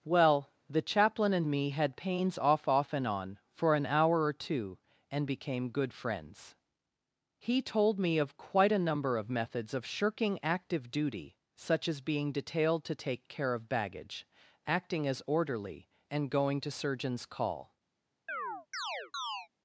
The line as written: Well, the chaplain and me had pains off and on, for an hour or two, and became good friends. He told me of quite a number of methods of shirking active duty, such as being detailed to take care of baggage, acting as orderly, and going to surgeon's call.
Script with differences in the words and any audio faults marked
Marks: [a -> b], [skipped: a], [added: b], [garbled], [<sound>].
Well, the chaplain and me had pains off [added: off] and on, for an hour or two, and became good friends. He told me of quite a number of methods of shirking active duty, such as being detailed to take care of baggage, acting as orderly, and going to surgeon's call. [chirp]